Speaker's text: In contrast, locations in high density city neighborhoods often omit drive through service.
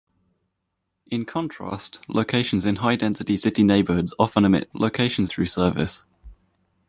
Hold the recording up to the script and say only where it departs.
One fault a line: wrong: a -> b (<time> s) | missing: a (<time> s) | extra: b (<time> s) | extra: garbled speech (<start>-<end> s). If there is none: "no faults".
wrong: drive -> locations (4.7 s)